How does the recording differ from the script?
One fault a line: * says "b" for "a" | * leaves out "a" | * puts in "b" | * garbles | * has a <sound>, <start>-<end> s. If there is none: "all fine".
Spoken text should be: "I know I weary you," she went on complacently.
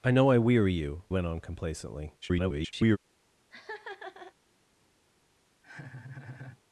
* leaves out "she"
* garbles
* has a laugh, 3.5-4.3 s
* has a laugh, 5.6-6.6 s